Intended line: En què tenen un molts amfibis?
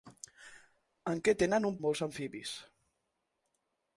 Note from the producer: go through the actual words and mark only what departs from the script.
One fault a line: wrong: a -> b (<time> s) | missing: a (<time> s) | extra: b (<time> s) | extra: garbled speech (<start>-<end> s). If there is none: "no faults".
no faults